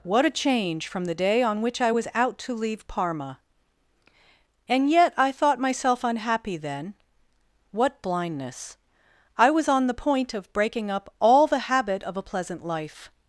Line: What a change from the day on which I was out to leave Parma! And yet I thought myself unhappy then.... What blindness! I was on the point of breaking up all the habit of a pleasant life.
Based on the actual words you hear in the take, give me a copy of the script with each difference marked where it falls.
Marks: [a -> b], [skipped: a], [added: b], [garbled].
What a change from the day on which I was out to leave Parma! And yet I thought myself unhappy then.... What blindness! I was on the point of breaking up all the habit of a pleasant life.